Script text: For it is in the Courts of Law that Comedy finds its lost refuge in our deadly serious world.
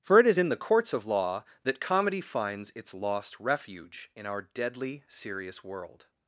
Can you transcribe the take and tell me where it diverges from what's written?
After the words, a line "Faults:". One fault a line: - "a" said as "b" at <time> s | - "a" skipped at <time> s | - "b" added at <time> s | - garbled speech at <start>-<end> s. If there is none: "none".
For it is in the Courts of Law that Comedy finds its lost refuge in our deadly serious world.
Faults:
none